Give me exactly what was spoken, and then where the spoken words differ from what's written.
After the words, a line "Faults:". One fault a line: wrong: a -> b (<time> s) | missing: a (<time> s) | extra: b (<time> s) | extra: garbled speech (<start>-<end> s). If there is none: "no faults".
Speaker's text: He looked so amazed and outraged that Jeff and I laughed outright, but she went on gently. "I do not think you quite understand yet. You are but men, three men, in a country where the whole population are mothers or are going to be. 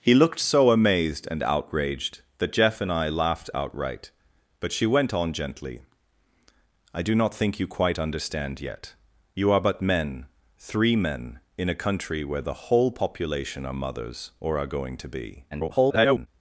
He looked so amazed and outraged that Jeff and I laughed outright, but she went on gently. "I do not think you quite understand yet. You are but men, three men, in a country where the whole population are mothers or are going to be. [garbled]
Faults:
extra: garbled speech (15.5-16.3 s)